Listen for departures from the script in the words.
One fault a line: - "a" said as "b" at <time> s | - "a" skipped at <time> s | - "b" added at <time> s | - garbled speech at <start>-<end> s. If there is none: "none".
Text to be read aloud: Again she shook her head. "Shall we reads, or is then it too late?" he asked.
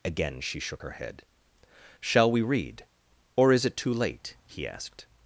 - "reads" said as "read" at 2.4 s
- "then" skipped at 3.6 s